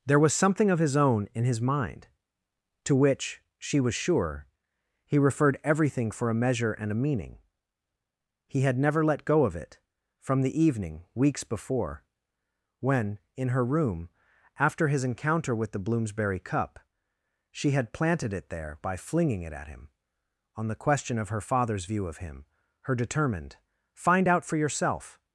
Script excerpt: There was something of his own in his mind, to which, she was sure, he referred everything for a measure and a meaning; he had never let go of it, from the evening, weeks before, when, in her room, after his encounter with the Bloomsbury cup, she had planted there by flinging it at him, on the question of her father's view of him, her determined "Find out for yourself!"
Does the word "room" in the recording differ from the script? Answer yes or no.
no